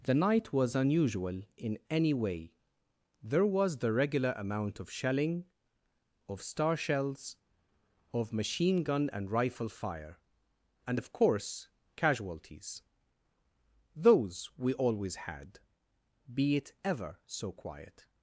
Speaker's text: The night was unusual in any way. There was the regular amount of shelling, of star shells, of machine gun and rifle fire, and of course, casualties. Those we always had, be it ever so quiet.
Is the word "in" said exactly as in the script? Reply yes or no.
yes